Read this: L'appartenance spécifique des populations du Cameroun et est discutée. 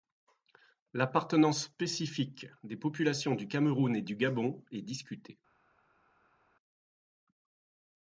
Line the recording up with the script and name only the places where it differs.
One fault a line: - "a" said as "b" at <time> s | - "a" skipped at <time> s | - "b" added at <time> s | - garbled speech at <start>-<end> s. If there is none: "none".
- "du Gabon" added at 4.0 s